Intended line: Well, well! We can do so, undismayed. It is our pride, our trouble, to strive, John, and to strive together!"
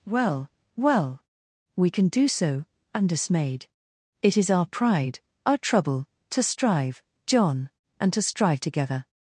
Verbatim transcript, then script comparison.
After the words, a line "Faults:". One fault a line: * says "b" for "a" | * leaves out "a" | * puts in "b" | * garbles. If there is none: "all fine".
Well, well! We can do so, undismayed. It is our pride, our trouble, to strive, John, and to strive together!"
Faults:
all fine